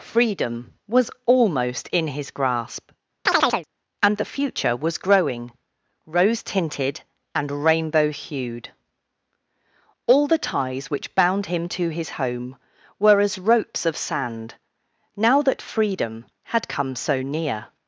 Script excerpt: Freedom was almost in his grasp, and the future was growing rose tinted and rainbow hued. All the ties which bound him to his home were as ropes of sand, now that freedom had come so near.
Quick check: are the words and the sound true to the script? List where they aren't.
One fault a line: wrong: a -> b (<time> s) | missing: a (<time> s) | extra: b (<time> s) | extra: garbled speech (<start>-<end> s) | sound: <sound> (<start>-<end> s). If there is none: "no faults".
sound: chirp (3.3-3.7 s)